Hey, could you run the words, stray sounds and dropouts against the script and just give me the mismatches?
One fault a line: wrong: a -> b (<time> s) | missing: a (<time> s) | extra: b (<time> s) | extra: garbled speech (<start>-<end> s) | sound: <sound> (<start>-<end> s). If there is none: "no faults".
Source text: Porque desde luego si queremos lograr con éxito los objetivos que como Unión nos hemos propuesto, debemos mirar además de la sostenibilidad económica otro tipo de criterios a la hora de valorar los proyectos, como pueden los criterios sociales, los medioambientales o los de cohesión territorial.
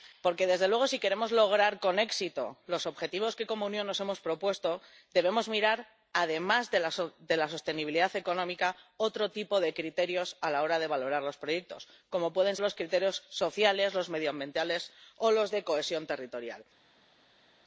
no faults